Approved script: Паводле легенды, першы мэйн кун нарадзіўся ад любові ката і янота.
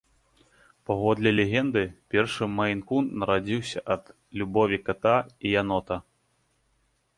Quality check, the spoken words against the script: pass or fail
pass